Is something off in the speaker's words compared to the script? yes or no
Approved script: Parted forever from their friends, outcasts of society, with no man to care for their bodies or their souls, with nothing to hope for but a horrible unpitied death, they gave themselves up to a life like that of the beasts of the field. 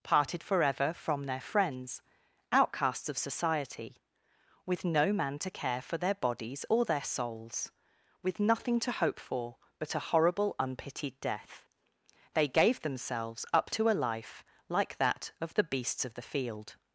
no